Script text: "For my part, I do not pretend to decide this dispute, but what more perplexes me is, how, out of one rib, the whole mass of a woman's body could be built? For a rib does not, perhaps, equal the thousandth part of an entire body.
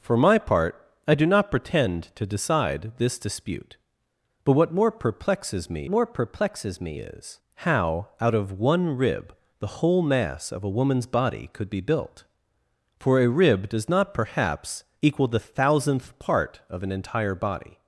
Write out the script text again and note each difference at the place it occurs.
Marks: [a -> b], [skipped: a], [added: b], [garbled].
"For my part, I do not pretend to decide this dispute, but what more perplexes me [added: more perplexes me] is, how, out of one rib, the whole mass of a woman's body could be built? For a rib does not, perhaps, equal the thousandth part of an entire body.